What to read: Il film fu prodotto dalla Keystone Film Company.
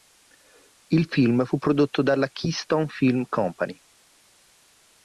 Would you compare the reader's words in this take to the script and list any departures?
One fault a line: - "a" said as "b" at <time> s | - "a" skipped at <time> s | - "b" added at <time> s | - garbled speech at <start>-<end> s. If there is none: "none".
none